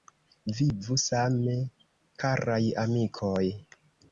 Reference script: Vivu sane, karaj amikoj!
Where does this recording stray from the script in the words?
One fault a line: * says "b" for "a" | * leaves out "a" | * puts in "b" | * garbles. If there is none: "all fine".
all fine